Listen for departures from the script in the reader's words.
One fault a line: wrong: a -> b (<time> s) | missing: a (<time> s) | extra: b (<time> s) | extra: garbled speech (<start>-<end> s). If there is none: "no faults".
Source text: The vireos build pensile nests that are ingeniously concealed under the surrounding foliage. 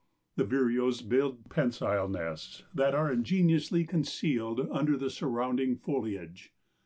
no faults